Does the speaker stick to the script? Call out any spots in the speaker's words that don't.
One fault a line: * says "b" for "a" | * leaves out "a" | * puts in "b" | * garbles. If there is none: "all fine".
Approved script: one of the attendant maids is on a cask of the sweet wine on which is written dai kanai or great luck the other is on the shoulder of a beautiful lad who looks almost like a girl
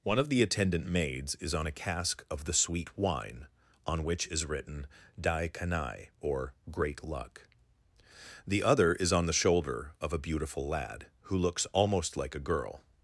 all fine